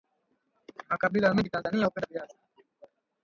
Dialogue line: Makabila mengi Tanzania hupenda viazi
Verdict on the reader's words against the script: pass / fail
pass